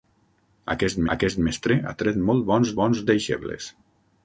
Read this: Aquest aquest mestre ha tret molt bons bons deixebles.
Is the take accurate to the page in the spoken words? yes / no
yes